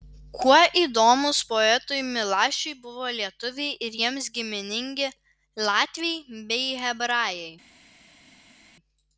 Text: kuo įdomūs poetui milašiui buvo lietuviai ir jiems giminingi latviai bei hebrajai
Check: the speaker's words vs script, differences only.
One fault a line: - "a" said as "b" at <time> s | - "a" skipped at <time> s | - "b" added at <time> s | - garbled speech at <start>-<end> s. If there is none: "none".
none